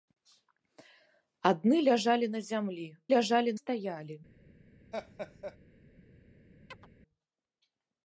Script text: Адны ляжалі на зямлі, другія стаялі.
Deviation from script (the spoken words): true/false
true